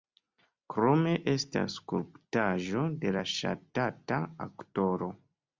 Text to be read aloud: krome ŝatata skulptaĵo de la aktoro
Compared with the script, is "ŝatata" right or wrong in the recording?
wrong